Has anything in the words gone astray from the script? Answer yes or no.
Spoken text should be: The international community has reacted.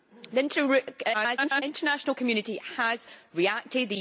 yes